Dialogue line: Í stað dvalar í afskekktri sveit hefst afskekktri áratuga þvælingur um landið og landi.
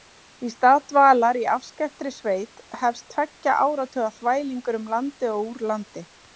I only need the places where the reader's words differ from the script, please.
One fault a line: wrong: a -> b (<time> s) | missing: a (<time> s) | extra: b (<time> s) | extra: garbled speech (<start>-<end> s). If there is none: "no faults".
wrong: afskekktri -> tveggja (3.2 s)
extra: úr (5.5 s)